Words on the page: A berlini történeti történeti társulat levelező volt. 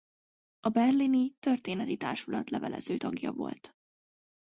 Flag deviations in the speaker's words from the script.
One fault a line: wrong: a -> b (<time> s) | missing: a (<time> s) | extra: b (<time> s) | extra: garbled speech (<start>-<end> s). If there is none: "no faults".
missing: történeti (2.0 s)
extra: tagja (2.9 s)